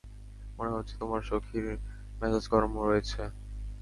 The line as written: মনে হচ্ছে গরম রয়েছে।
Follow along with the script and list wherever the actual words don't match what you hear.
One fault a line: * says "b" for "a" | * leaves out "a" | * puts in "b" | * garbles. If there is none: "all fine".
* puts in "তোমার সখীর মেজাজ"